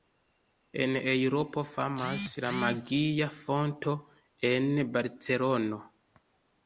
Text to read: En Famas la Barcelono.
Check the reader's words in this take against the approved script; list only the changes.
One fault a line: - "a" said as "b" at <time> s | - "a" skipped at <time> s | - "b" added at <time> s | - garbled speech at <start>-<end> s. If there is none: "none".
- "Eŭropo" added at 1.1 s
- "Magia Fonto en" added at 2.6 s